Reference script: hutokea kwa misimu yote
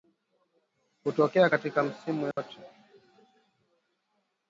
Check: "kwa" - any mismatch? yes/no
yes